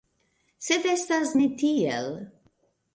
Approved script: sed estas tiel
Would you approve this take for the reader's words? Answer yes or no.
no